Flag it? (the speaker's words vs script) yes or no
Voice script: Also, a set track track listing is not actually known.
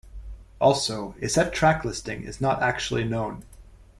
yes